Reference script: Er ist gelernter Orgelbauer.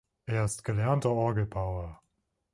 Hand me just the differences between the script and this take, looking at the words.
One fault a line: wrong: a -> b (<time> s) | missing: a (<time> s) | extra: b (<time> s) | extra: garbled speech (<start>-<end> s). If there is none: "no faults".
no faults